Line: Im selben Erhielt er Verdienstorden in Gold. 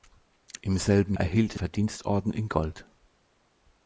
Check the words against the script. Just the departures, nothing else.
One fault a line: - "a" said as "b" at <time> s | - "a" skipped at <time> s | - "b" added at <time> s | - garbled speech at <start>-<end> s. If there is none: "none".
none